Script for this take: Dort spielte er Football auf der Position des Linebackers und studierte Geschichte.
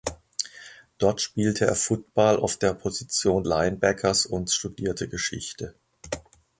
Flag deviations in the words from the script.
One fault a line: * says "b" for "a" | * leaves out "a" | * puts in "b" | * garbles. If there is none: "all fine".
* leaves out "des"